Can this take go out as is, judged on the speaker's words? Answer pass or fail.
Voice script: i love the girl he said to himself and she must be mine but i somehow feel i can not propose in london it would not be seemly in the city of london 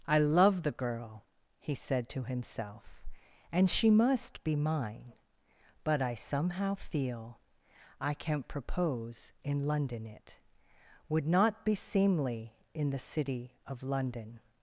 pass